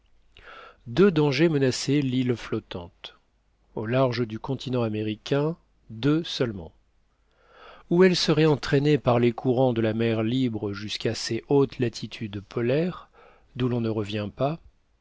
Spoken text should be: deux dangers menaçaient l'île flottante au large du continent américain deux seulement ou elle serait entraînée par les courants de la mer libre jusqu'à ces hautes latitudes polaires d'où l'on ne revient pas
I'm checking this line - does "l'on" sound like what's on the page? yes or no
yes